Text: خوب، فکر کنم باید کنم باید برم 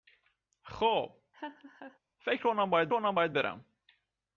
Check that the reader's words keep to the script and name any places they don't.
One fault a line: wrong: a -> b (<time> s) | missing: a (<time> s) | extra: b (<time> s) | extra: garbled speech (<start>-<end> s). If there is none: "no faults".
no faults